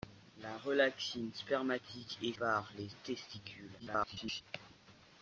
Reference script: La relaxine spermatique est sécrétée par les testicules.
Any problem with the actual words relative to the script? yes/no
yes